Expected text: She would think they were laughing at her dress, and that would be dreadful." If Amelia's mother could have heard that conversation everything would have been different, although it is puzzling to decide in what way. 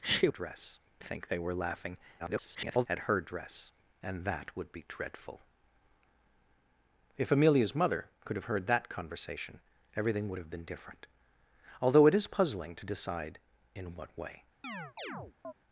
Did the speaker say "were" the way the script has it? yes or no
yes